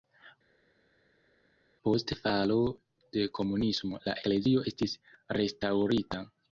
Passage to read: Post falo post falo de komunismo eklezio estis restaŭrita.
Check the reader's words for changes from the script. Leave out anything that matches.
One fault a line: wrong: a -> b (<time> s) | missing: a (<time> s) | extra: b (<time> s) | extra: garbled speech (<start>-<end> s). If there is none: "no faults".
missing: post falo (2.6 s)
extra: la (4.1 s)